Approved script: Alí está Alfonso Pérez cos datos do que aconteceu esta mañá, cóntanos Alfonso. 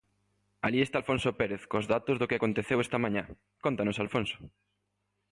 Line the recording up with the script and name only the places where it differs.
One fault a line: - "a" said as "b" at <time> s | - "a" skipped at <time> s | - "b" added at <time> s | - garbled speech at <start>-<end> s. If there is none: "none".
none